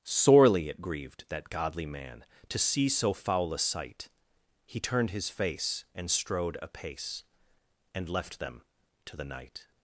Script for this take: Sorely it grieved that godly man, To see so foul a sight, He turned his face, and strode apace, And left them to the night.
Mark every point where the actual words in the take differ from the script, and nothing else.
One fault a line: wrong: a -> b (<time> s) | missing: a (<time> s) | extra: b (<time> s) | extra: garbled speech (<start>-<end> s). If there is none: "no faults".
no faults